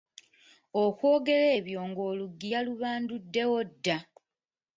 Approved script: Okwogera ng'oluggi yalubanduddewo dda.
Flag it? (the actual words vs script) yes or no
yes